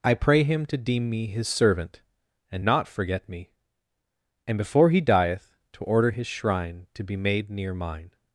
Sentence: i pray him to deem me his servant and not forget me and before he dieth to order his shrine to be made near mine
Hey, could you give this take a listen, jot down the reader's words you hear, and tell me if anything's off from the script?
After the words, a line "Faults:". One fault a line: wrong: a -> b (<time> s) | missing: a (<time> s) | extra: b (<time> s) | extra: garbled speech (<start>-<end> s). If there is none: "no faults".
i pray him to deem me his servant and not forget me and before he dieth to order his shrine to be made near mine
Faults:
no faults